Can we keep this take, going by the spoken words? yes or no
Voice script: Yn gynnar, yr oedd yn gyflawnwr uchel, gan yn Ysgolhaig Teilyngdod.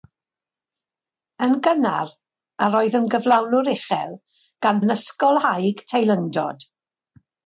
yes